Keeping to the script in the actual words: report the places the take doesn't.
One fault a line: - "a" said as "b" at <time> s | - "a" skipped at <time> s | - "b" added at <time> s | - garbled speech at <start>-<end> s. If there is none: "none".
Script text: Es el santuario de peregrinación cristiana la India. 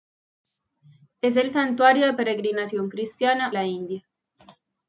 none